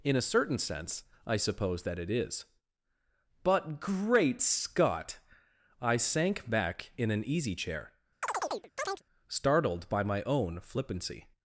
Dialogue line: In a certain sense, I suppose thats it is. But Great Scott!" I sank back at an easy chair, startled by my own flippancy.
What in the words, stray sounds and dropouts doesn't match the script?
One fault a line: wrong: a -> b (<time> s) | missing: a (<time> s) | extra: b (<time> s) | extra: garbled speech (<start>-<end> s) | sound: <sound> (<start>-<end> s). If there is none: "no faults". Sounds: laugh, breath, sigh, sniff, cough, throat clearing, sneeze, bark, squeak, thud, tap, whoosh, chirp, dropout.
wrong: thats -> that (1.8 s)
wrong: at -> in (7.0 s)
sound: chirp (8.2-9.0 s)